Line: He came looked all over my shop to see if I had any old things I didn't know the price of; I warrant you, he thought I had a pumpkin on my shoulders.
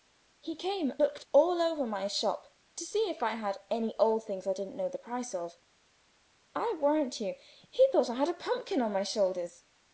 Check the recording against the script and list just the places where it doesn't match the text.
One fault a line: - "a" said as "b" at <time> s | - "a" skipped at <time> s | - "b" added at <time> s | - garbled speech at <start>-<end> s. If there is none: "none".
none